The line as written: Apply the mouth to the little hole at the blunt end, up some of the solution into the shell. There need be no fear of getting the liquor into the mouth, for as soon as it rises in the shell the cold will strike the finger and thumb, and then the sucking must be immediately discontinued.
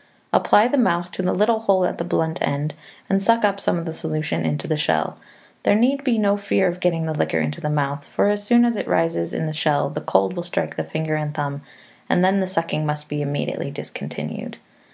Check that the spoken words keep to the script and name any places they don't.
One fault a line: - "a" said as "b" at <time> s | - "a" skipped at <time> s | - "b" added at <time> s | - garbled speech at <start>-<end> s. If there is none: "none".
- "and suck" added at 3.1 s